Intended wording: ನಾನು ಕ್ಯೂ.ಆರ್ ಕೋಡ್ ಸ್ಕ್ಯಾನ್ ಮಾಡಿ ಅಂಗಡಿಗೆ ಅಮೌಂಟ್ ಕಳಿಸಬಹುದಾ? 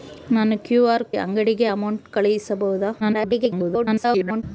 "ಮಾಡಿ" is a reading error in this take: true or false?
true